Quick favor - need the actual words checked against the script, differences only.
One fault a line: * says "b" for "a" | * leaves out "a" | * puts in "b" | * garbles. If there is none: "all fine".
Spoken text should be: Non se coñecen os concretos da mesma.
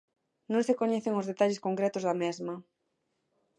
* puts in "detalles"